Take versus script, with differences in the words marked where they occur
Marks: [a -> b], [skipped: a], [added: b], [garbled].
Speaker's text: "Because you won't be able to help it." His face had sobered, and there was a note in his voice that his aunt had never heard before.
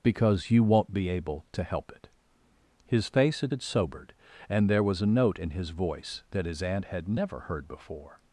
"Because you won't be able to help it." His face had [added: had] sobered, and there was a note in his voice that his aunt had never heard before.